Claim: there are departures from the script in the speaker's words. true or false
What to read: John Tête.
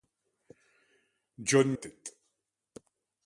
false